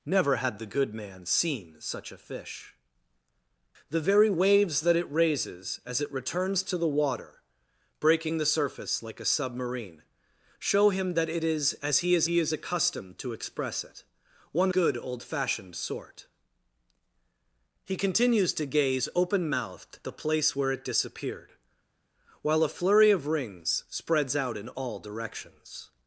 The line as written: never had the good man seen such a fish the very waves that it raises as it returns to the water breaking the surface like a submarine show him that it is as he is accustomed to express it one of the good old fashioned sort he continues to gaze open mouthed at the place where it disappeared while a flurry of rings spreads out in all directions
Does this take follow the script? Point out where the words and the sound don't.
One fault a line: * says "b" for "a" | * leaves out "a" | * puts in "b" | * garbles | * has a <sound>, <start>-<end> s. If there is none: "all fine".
* puts in "he is"
* leaves out "of the"
* leaves out "at"